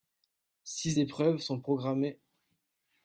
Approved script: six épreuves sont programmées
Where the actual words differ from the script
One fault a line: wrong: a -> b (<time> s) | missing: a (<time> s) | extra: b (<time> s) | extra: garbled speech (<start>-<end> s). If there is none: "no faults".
no faults